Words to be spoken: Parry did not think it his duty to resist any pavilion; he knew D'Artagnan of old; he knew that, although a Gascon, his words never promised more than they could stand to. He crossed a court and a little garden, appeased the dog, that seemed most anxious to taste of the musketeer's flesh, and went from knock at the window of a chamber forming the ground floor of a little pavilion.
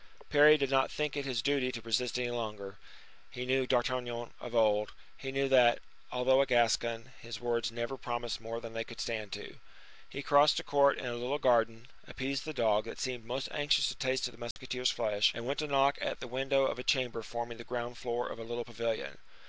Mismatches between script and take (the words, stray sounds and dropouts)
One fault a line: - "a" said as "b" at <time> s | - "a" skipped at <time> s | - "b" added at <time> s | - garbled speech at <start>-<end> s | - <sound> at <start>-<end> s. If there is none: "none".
- "pavilion" said as "longer" at 2.3 s
- dropout at 14.5-14.6 s
- "from" said as "to" at 15.6 s